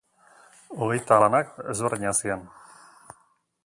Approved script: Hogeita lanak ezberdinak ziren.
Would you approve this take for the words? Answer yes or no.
yes